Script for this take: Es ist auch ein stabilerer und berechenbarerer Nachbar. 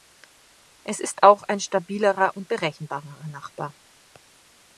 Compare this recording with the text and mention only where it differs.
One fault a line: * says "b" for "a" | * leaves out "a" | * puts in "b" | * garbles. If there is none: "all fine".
all fine